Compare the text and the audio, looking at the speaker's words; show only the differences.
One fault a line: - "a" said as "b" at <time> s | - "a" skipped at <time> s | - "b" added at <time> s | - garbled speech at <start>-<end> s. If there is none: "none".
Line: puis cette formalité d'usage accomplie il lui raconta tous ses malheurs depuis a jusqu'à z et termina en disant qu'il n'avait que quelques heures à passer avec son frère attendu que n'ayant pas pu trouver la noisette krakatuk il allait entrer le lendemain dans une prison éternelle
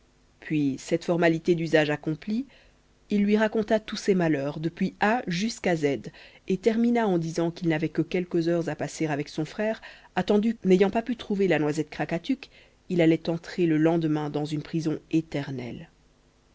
- "que" skipped at 10.6 s